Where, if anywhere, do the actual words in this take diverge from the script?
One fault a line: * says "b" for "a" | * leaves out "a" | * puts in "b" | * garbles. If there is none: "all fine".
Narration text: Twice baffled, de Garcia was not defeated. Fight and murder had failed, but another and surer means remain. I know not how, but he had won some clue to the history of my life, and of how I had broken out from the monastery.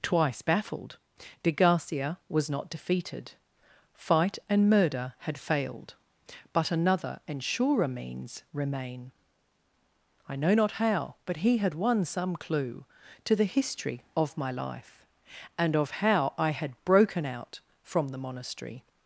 all fine